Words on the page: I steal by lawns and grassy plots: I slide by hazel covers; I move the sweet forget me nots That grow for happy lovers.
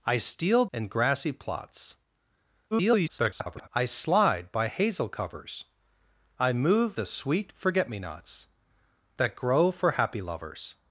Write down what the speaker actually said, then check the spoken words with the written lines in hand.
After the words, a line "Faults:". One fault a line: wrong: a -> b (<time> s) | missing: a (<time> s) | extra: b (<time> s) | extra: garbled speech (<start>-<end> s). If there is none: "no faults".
I steal and grassy plots: [garbled] I slide by hazel covers; I move the sweet forget me nots That grow for happy lovers.
Faults:
missing: by lawns (0.7 s)
extra: garbled speech (2.7-3.7 s)